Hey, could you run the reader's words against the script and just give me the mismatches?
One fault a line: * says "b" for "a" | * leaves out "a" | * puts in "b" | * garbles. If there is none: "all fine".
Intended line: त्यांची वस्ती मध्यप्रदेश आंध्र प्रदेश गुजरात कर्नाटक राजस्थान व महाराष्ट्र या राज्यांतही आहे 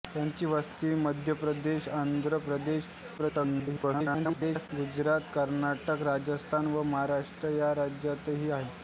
* garbles